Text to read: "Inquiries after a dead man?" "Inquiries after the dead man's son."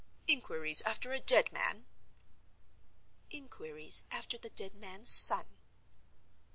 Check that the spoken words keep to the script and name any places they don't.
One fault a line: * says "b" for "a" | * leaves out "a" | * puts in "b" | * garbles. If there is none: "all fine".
all fine